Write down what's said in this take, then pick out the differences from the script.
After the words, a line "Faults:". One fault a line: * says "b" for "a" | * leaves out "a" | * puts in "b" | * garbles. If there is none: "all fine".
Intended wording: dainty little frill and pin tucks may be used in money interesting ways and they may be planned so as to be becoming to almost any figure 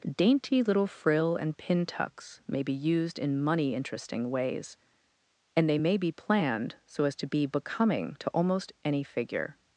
dainty little frill and pin tucks may be used in money interesting ways and they may be planned so as to be becoming to almost any figure
Faults:
all fine